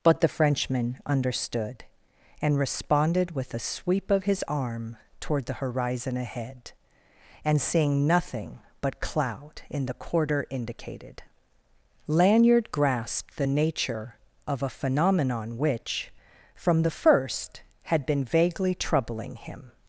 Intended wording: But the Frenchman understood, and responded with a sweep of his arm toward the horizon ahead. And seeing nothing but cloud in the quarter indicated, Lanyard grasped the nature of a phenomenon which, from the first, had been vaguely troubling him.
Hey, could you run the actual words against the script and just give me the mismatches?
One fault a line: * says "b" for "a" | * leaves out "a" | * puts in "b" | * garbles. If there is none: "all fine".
all fine